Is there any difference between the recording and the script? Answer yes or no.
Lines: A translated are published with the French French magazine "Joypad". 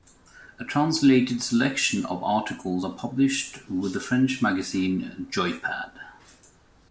yes